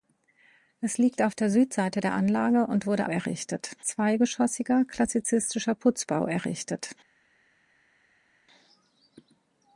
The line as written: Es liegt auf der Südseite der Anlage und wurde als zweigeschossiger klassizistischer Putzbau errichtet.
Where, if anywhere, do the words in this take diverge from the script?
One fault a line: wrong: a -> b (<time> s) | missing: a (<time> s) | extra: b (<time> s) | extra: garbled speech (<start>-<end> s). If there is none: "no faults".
wrong: als -> errichtet (3.1 s)